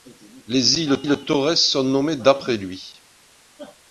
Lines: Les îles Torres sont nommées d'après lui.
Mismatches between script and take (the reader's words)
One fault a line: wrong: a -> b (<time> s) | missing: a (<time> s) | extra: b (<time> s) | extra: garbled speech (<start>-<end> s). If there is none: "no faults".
extra: îles (1.0 s)